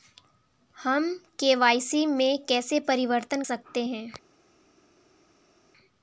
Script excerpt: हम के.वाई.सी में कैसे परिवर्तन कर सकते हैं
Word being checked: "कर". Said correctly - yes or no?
no